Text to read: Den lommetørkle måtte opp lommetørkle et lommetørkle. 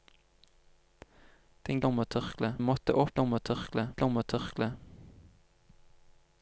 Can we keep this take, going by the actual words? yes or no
yes